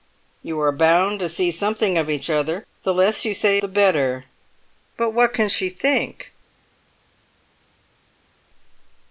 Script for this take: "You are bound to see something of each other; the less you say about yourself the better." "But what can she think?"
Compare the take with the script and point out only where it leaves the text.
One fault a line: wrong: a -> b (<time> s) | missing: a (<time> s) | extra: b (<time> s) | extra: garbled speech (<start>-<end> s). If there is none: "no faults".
missing: about yourself (3.6 s)